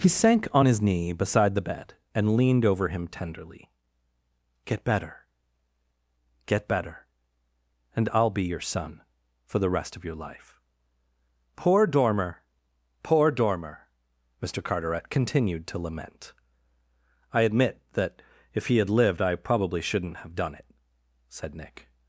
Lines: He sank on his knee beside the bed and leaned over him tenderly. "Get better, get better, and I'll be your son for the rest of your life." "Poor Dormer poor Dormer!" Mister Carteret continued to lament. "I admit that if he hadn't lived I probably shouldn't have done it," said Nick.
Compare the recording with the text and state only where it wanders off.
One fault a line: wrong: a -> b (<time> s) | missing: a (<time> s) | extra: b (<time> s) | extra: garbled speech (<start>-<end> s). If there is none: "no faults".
wrong: hadn't -> had (18.8 s)